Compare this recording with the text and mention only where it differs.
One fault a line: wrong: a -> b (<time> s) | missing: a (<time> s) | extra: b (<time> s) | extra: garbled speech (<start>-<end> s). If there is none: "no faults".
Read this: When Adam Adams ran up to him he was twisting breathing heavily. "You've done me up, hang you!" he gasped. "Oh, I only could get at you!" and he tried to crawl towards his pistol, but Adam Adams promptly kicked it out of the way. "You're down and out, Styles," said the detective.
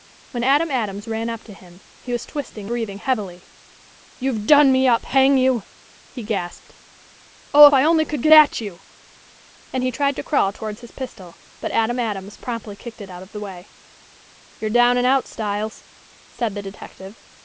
no faults